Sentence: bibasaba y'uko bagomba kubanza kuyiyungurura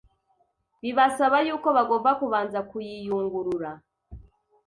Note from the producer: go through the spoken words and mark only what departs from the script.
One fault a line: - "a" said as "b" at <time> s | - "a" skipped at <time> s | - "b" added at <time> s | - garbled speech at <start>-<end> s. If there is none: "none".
none